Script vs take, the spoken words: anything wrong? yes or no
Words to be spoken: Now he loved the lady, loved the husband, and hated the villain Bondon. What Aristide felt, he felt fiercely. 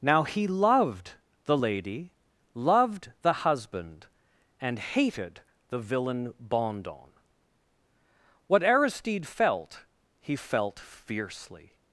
no